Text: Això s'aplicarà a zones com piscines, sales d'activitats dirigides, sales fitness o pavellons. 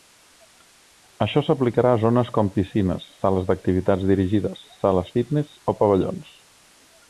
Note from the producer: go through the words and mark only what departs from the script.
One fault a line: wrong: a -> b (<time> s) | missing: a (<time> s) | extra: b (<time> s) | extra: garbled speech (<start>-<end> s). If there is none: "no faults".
no faults